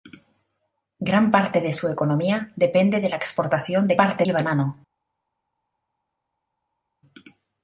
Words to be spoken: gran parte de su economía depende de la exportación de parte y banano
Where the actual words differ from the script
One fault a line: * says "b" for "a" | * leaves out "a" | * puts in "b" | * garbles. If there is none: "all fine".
all fine